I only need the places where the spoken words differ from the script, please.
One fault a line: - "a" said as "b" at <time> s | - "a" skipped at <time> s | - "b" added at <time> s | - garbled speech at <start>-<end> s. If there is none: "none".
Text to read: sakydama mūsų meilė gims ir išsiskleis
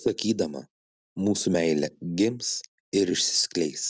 none